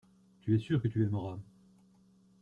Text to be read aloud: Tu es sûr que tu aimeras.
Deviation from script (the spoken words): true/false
false